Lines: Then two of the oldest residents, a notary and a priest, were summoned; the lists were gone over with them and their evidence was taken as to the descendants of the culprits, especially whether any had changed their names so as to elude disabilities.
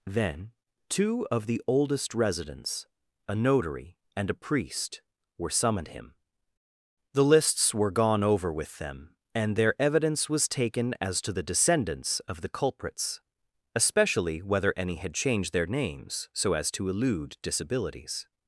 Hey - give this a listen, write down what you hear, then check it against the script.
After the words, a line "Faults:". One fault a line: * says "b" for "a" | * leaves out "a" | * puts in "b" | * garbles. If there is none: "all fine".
Then two of the oldest residents, a notary and a priest, were summoned; him the lists were gone over with them and their evidence was taken as to the descendants of the culprits, especially whether any had changed their names so as to elude disabilities.
Faults:
* puts in "him"